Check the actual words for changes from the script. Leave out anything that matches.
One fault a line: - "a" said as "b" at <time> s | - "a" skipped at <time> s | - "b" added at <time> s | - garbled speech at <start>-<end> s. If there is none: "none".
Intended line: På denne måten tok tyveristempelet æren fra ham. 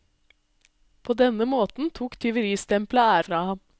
- "æren" skipped at 3.2 s